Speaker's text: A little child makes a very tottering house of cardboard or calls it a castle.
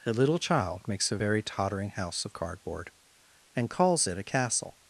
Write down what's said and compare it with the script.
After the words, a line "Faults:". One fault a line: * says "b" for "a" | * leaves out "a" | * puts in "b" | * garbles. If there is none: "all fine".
A little child makes a very tottering house of cardboard and calls it a castle.
Faults:
* says "and" for "or"